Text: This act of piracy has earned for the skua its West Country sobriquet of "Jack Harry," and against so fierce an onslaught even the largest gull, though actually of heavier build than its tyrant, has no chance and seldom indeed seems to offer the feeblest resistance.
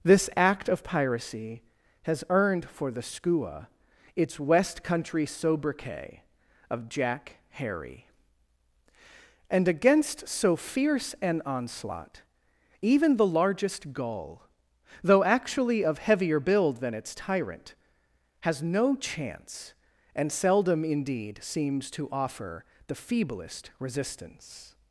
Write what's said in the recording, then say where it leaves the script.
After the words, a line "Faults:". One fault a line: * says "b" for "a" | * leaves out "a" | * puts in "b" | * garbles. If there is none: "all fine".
This act of piracy has earned for the skua its West Country sobriquet of "Jack Harry," and against so fierce an onslaught even the largest gull, though actually of heavier build than its tyrant, has no chance and seldom indeed seems to offer the feeblest resistance.
Faults:
all fine